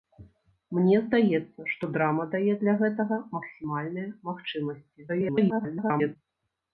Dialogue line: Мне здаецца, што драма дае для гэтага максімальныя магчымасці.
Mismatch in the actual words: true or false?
true